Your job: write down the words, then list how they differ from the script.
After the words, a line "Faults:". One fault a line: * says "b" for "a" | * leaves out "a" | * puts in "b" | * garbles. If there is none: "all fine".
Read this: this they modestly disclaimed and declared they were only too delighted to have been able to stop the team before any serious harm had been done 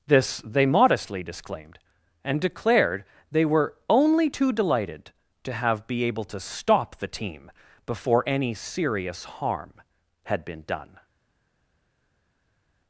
this they modestly disclaimed and declared they were only too delighted to have be able to stop the team before any serious harm had been done
Faults:
* says "be" for "been"